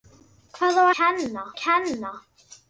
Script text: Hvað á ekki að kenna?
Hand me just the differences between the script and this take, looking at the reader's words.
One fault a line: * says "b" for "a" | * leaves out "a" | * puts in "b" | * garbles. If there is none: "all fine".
* says "kenna" for "ekki"